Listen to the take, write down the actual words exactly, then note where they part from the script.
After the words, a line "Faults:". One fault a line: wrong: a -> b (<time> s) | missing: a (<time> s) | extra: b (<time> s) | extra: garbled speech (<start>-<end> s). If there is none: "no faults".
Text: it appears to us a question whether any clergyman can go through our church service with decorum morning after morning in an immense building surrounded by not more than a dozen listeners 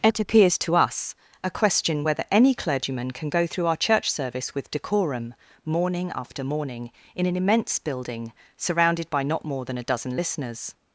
it appears to us a question whether any clergyman can go through our church service with decorum morning after morning in an immense building surrounded by not more than a dozen listeners
Faults:
no faults